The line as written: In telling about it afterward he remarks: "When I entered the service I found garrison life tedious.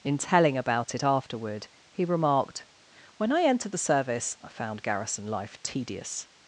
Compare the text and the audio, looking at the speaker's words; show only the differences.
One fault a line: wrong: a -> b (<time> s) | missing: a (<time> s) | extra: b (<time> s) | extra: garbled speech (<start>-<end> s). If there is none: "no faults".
wrong: remarks -> remarked (2.1 s)